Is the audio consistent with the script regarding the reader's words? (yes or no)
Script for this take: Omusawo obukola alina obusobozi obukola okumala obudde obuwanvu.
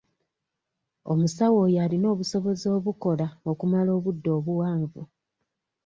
no